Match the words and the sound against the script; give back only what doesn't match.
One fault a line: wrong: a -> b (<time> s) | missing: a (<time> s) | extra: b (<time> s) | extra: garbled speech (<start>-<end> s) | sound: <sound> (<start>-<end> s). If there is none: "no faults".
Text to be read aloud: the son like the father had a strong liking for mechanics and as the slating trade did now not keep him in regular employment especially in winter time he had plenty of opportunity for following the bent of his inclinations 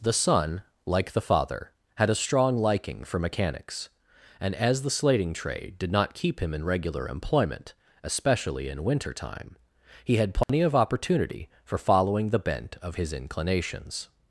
missing: now (5.9 s)
sound: dropout (10.4-10.5 s)